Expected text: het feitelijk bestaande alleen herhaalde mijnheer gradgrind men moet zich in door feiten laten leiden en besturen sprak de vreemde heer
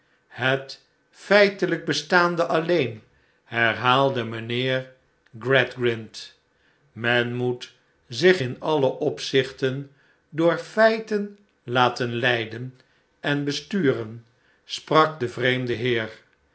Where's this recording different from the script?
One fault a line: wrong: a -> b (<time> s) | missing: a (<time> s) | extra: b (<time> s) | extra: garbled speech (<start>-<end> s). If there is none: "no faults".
extra: alle opzichten (8.6 s)